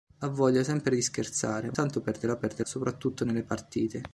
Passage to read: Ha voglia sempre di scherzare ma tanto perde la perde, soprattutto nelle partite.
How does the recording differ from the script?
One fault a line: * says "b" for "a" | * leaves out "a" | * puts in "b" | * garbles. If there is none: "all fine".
all fine